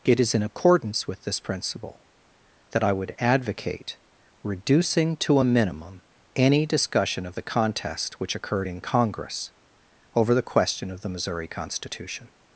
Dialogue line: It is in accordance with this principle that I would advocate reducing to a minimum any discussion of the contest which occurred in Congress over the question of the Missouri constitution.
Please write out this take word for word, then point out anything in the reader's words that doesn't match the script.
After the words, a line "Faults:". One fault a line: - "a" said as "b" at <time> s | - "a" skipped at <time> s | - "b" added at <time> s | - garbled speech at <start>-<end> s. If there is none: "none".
It is in accordance with this principle that I would advocate reducing to a minimum any discussion of the contest which occurred in Congress over the question of the Missouri constitution.
Faults:
none